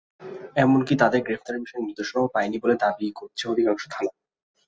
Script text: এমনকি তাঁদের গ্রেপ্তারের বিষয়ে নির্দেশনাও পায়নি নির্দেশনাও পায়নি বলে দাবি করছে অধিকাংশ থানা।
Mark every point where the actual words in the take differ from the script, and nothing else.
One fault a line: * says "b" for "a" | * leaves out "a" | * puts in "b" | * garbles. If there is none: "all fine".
* leaves out "নির্দেশনাও পায়নি"